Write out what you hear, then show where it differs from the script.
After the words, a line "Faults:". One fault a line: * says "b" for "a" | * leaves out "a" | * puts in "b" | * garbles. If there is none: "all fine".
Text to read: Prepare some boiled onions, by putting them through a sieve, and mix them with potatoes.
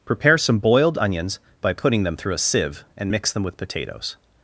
Prepare some boiled onions, by putting them through a sieve, and mix them with potatoes.
Faults:
all fine